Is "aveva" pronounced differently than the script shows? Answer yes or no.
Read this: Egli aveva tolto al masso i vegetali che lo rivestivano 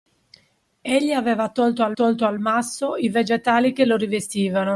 no